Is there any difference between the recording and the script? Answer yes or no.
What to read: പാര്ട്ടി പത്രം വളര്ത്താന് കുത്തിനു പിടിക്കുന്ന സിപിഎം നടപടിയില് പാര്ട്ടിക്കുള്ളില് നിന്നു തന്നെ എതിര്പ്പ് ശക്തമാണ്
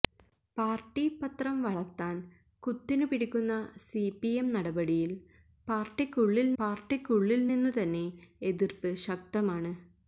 yes